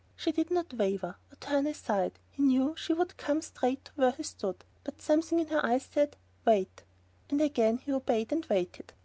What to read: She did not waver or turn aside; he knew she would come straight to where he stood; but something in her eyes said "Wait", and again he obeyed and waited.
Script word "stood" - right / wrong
right